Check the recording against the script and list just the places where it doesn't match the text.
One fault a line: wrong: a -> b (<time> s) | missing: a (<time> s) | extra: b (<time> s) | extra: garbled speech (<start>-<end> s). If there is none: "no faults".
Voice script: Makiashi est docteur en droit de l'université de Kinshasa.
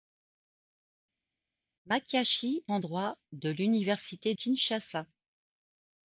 missing: est docteur (2.6 s)
missing: de (4.3 s)